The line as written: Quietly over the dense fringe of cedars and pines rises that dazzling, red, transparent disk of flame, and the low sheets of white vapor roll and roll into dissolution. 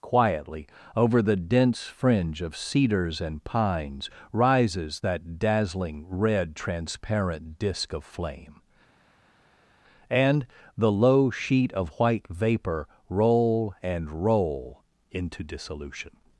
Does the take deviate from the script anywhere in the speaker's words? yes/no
yes